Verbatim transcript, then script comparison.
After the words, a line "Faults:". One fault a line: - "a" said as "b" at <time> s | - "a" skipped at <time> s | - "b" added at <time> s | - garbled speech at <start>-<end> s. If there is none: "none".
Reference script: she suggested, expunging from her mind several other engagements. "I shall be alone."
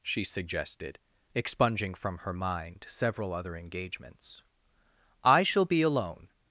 she suggested, expunging from her mind several other engagements. "I shall be alone."
Faults:
none